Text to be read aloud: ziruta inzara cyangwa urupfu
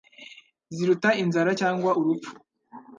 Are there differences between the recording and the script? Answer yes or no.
no